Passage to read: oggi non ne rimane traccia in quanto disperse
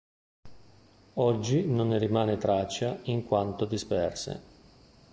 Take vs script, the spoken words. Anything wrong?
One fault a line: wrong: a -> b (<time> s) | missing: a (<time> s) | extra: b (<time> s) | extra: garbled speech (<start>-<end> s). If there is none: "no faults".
no faults